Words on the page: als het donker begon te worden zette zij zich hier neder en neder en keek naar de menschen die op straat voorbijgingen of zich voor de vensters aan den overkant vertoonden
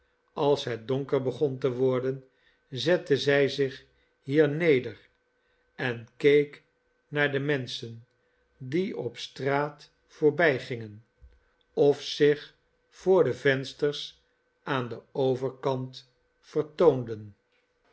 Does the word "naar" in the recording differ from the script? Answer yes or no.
no